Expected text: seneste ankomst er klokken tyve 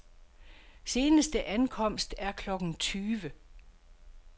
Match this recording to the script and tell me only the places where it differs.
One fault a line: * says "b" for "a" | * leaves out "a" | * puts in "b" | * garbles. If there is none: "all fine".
all fine